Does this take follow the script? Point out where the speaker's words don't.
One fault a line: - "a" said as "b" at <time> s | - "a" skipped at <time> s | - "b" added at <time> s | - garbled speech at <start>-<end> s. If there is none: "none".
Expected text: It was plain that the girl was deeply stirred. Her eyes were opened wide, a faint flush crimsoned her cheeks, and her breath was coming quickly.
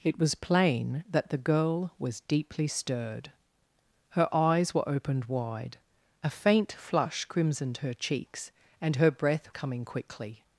- "was" skipped at 9.5 s